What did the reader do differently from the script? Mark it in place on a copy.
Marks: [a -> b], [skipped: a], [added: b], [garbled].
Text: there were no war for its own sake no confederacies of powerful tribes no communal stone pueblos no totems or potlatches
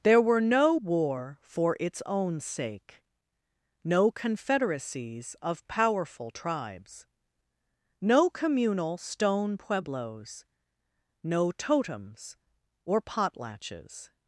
there were no war for its own sake no confederacies of powerful tribes no communal stone pueblos no totems or potlatches